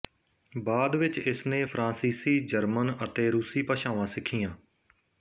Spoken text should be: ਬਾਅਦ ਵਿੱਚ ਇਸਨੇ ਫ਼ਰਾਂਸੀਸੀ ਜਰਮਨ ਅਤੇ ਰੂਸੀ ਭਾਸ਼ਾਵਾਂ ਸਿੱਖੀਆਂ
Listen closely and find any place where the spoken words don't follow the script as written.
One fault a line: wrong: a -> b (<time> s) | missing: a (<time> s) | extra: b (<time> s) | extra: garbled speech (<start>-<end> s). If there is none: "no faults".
no faults